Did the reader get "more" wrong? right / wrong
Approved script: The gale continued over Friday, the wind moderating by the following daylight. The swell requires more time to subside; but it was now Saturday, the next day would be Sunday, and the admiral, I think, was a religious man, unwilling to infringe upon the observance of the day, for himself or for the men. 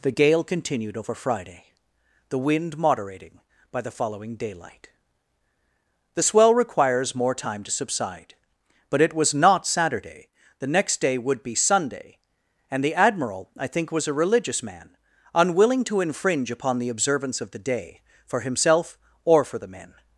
right